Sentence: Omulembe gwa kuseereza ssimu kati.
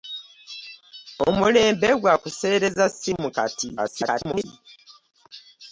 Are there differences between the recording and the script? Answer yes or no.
yes